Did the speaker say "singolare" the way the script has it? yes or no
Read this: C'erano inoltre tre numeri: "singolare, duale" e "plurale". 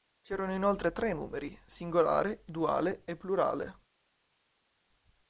yes